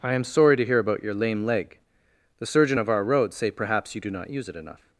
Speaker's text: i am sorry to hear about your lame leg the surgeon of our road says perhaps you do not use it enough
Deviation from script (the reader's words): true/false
true